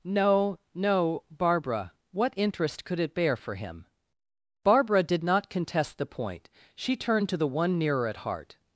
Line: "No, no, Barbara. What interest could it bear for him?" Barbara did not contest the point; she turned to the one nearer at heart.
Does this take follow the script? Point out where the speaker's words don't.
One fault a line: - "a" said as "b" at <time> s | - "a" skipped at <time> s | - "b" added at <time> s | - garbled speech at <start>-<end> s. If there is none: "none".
none